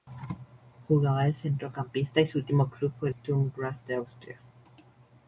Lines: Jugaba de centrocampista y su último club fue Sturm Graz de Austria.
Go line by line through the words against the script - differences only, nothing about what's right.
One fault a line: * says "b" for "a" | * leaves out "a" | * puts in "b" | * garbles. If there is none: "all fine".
all fine